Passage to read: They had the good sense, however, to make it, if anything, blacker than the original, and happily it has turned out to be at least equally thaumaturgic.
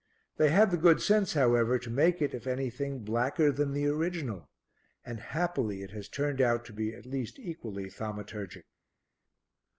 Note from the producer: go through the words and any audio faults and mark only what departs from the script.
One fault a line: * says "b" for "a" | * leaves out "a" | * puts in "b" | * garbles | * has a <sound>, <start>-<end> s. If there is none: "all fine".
all fine